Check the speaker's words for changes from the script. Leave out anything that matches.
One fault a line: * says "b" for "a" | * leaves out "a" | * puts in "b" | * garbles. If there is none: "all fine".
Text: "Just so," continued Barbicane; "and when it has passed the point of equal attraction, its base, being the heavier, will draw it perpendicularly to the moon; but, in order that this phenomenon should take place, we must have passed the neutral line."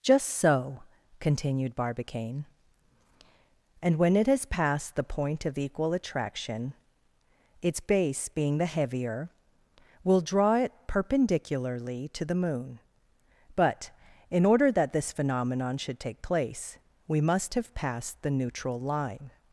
all fine